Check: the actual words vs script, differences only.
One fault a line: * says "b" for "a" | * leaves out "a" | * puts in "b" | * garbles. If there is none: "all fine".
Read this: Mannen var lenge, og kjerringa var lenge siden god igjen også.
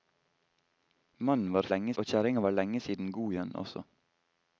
all fine